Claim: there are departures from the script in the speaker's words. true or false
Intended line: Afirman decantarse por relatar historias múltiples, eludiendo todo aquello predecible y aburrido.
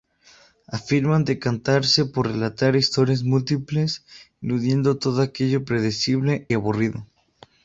true